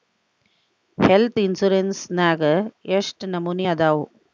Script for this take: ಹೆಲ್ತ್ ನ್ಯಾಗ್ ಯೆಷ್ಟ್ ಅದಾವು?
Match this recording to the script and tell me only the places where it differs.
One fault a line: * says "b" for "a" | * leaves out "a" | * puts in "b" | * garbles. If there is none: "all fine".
* puts in "ಇನ್ಸಿರೆನ್ಸ್"
* puts in "ನಮನಿ"